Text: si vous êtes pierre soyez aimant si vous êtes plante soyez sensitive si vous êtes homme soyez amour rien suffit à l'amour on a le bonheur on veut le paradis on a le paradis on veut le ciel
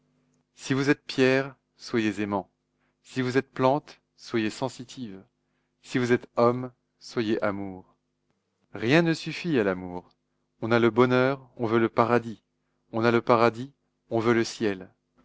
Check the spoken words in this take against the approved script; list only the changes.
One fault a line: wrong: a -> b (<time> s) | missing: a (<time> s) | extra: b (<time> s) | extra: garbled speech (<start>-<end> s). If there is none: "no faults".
extra: ne (9.0 s)